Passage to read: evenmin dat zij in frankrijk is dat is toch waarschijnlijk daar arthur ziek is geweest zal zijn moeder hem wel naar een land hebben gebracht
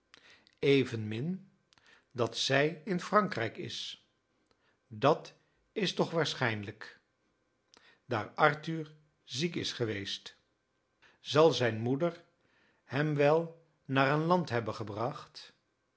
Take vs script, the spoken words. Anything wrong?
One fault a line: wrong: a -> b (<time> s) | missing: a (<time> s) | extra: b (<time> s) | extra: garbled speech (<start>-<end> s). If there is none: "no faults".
no faults